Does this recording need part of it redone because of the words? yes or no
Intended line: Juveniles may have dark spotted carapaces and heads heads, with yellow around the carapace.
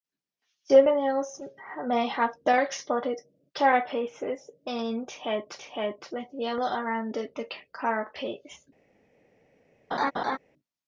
no